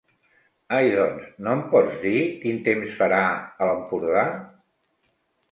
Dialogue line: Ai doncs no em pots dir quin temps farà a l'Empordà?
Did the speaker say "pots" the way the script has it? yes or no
yes